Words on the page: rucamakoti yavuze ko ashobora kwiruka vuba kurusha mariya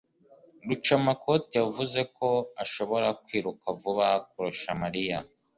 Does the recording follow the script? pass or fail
pass